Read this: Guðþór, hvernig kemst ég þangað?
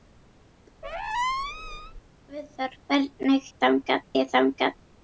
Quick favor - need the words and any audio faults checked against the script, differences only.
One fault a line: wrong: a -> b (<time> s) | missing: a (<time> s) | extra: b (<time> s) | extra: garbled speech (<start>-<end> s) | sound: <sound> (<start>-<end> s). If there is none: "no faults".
sound: squeak (0.8-2.0 s)
wrong: kemst -> þangað (3.7 s)